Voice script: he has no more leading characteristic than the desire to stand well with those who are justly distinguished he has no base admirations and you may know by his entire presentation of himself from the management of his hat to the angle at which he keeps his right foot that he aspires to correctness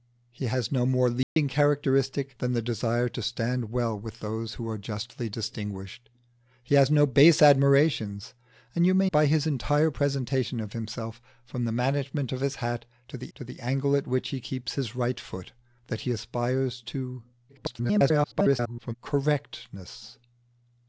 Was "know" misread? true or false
true